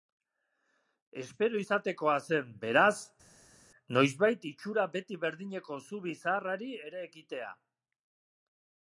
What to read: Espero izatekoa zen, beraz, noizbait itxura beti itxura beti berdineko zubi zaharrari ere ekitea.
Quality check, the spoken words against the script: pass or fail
fail